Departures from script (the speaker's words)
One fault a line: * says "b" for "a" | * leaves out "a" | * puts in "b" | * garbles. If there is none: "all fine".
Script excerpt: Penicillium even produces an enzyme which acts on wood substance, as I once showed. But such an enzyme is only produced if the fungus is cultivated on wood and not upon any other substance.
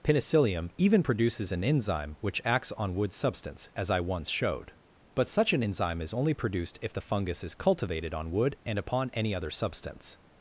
* leaves out "not"